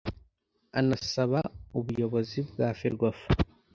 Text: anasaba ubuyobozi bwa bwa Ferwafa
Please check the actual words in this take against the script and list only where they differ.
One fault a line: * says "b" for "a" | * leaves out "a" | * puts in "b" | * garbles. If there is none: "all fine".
* leaves out "bwa"